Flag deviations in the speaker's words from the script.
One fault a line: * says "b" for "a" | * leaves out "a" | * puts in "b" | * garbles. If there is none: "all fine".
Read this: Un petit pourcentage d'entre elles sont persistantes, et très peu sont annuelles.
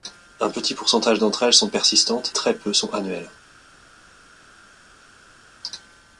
* leaves out "et"